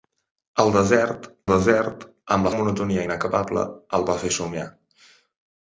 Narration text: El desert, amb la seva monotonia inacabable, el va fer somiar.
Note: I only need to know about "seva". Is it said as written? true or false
false